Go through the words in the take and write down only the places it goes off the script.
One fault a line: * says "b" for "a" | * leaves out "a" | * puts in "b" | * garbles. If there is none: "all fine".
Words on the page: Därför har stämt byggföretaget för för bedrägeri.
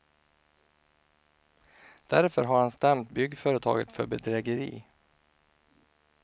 * puts in "han"
* leaves out "för"